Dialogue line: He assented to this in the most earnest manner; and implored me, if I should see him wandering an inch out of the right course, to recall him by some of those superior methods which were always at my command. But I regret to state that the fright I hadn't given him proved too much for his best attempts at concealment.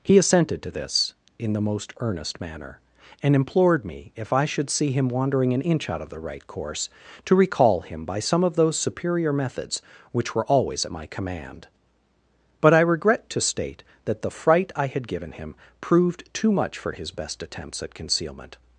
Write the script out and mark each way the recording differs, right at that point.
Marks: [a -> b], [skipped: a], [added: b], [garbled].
He assented to this in the most earnest manner; and implored me, if I should see him wandering an inch out of the right course, to recall him by some of those superior methods which were always at my command. But I regret to state that the fright I [hadn't -> had] given him proved too much for his best attempts at concealment.